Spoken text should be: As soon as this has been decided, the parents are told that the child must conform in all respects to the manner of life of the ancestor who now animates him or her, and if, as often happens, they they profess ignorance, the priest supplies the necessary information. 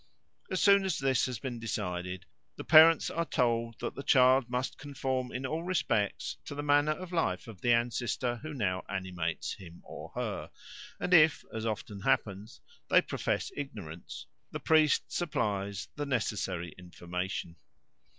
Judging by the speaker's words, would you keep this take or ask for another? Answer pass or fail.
fail